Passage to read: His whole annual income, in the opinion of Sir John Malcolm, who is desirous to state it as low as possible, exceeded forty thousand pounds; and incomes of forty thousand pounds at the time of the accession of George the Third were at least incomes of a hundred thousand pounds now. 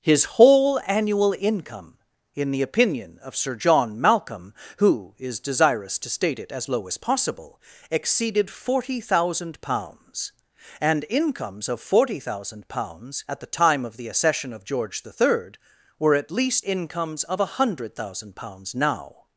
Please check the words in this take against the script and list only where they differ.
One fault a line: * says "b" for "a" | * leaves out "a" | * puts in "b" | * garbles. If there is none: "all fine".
all fine